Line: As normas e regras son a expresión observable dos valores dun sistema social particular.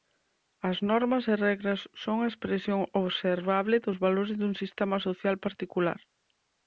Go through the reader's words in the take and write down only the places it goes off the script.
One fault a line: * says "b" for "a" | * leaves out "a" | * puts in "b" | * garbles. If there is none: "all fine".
all fine